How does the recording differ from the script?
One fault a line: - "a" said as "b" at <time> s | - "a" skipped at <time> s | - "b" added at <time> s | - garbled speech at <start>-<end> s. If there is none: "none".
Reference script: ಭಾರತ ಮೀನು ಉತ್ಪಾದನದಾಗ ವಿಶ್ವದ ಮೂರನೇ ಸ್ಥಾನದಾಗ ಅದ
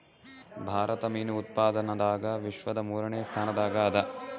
none